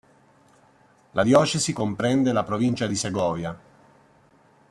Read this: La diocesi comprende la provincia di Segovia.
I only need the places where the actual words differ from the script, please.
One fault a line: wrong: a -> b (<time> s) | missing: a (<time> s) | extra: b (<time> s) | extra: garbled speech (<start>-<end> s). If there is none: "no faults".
no faults